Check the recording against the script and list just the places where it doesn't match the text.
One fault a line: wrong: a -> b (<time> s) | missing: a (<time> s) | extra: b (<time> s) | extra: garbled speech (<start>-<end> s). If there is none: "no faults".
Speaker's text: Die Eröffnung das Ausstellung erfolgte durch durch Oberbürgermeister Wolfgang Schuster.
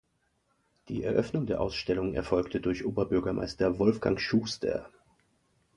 wrong: das -> der (1.4 s)
missing: durch (2.8 s)